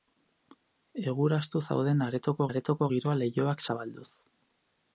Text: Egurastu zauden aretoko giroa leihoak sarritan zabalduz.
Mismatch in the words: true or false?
true